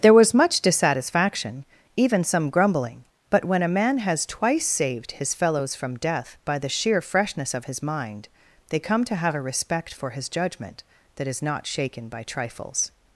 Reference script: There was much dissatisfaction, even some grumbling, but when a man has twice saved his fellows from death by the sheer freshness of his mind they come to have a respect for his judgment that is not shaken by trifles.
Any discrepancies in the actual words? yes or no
no